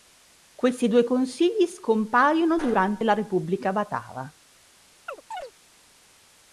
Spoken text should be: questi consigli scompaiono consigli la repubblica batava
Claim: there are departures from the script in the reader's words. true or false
true